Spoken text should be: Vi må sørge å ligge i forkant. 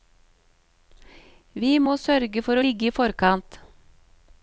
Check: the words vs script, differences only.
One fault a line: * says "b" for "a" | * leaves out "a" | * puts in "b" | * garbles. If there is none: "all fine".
* puts in "for"